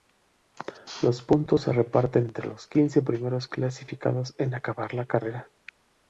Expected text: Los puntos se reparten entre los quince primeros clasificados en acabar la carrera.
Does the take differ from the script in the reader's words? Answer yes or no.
no